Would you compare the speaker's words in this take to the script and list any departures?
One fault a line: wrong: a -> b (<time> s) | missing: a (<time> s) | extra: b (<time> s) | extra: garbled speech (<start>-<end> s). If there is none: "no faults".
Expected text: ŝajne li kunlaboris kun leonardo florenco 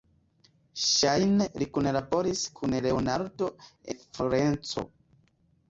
no faults